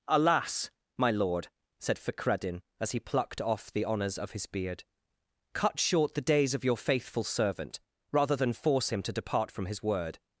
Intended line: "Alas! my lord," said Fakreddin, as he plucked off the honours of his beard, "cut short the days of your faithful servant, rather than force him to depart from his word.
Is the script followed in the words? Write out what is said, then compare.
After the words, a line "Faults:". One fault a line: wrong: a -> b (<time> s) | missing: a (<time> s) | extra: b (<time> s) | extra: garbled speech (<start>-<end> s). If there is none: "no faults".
"Alas! my lord," said Fakreddin, as he plucked off the honours of his beard, "cut short the days of your faithful servant, rather than force him to depart from his word.
Faults:
no faults